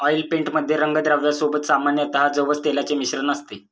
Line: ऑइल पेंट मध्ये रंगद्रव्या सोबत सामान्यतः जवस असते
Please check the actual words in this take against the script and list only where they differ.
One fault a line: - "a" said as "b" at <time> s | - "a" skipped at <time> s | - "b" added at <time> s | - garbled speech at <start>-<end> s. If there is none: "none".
- "तेलाचे मिश्रण" added at 2.6 s